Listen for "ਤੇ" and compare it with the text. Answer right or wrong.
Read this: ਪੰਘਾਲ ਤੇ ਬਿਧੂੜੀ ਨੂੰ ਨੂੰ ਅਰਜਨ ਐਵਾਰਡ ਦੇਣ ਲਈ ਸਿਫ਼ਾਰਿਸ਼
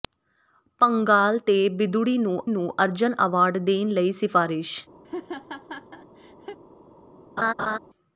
right